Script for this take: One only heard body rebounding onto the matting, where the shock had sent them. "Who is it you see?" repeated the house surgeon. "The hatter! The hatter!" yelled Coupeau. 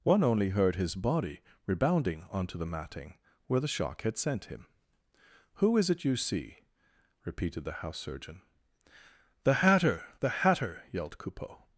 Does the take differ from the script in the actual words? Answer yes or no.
yes